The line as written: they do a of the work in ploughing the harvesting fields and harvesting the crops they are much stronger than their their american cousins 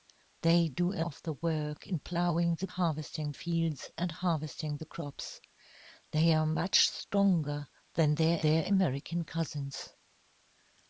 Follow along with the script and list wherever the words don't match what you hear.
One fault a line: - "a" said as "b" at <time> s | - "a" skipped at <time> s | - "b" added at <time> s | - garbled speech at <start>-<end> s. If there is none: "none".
none